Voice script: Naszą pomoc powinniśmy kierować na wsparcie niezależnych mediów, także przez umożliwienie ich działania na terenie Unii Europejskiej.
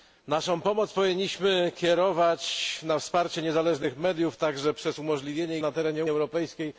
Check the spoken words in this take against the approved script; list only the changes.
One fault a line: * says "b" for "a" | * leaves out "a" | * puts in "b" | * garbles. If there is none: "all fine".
* leaves out "ich działania"
* leaves out "Unii"